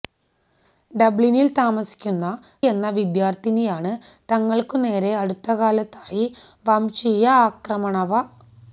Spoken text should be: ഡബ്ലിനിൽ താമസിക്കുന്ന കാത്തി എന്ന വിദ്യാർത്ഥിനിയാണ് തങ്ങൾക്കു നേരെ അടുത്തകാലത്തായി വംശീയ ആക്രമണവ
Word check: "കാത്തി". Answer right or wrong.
wrong